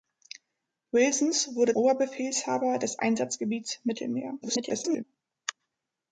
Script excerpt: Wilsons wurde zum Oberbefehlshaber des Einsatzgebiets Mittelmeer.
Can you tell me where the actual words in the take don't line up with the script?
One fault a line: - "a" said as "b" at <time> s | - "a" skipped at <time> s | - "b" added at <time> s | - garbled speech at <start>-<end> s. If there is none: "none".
- "zum" skipped at 1.8 s
- garbled speech at 4.4-5.0 s